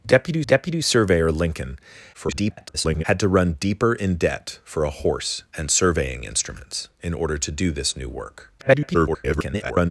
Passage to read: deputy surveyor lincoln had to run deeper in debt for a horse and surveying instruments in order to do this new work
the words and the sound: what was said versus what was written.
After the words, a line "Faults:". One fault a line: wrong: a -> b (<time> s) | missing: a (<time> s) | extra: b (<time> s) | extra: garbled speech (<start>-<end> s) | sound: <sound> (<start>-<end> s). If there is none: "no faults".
deputy deputy surveyor lincoln [garbled] had to run deeper in debt for a horse and surveying instruments in order to do this new work [garbled]
Faults:
extra: deputy (0.4 s)
extra: garbled speech (2.1-3.0 s)
extra: garbled speech (8.6-9.9 s)